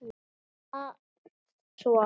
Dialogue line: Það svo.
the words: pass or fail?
pass